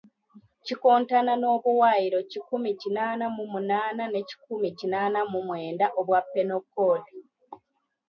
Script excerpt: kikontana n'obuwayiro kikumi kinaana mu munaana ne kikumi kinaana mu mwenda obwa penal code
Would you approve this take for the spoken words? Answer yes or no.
yes